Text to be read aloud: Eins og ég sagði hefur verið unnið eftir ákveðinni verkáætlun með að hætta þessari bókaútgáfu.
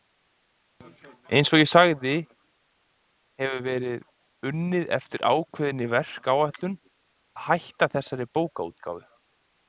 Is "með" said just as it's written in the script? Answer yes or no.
no